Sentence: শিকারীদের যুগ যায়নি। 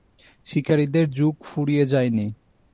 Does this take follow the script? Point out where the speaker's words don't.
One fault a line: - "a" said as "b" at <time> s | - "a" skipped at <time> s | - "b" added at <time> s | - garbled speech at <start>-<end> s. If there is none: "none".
- "ফুরিয়ে" added at 1.4 s